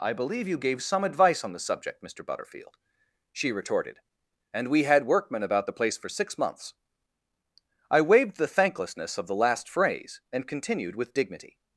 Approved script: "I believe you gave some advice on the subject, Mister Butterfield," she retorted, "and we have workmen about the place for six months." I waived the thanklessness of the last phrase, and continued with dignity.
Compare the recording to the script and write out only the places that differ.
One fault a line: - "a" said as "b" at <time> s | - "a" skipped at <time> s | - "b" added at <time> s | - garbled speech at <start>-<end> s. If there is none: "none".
- "have" said as "had" at 4.8 s